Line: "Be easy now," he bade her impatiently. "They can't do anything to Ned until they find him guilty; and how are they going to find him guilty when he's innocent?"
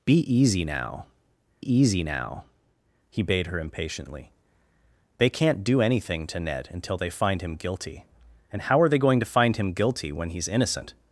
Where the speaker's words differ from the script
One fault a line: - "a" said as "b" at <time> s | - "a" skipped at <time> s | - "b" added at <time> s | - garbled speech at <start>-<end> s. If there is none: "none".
- "easy now" added at 1.6 s